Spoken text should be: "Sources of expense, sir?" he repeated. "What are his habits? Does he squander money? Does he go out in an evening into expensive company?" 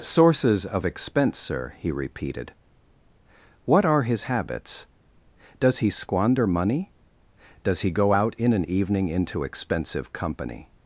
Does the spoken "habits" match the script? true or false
true